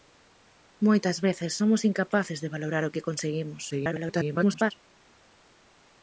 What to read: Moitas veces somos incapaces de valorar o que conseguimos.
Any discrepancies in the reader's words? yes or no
yes